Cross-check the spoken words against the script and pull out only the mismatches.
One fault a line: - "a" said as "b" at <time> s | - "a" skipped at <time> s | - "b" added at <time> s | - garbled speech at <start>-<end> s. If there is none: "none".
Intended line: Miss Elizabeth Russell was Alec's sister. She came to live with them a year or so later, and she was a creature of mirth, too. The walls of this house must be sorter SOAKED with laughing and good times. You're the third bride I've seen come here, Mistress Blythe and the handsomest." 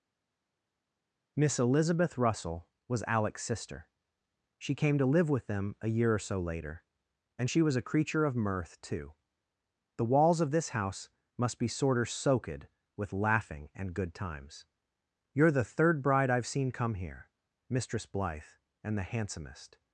none